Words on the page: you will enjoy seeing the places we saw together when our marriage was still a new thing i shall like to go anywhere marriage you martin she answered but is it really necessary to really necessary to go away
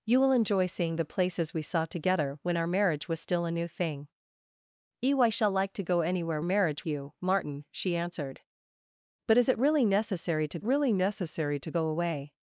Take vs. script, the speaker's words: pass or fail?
pass